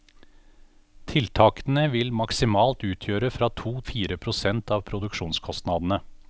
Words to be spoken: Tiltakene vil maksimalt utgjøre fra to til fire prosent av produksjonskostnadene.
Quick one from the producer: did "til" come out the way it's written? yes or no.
no